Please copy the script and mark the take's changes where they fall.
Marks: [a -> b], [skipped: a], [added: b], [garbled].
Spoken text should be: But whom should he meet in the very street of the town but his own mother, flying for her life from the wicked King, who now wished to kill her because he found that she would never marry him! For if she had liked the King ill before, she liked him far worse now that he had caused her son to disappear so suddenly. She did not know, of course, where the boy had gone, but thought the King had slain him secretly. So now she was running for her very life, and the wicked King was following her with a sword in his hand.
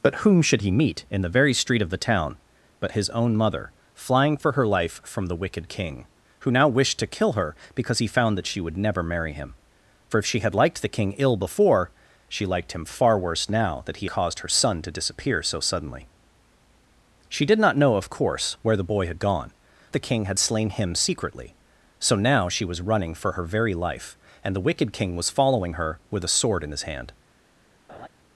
But whom should he meet in the very street of the town but his own mother, flying for her life from the wicked King, who now wished to kill her because he found that she would never marry him! For if she had liked the King ill before, she liked him far worse now that he [skipped: had] caused her son to disappear so suddenly. She did not know, of course, where the boy had gone, [skipped: but thought] the King had slain him secretly. So now she was running for her very life, and the wicked King was following her with a sword in his hand.